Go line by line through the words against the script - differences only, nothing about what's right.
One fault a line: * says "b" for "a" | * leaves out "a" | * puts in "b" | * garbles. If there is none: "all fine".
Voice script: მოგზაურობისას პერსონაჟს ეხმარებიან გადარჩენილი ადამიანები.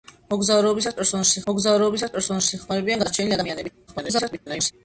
* puts in "მოგზაურობისას პერსონაჟს"
* garbles